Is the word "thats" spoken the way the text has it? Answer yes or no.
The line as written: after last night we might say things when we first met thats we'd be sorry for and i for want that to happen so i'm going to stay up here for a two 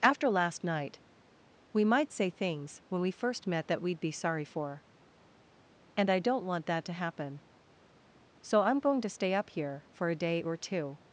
no